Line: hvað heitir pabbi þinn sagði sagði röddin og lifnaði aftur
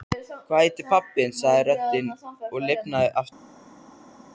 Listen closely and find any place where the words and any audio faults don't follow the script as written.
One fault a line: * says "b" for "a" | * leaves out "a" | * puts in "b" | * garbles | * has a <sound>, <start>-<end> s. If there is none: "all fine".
* leaves out "sagði"